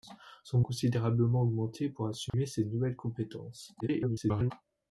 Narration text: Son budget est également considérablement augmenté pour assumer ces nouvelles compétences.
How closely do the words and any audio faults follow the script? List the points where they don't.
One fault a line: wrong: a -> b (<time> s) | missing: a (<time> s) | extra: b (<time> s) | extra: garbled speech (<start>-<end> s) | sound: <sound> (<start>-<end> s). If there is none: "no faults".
missing: budget est également (0.6 s)
sound: dropout (2.3-2.3 s)
extra: garbled speech (3.8-4.5 s)